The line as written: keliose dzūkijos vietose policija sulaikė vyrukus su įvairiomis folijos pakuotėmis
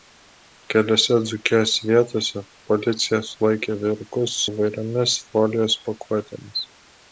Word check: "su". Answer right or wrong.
wrong